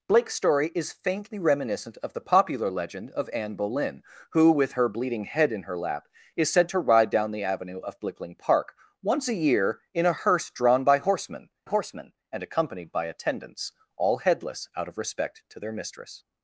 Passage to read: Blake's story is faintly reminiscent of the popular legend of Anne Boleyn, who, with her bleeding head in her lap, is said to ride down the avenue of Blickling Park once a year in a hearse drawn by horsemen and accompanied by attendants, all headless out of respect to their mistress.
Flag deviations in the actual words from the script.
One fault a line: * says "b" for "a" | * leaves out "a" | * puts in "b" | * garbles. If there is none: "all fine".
* puts in "horsemen"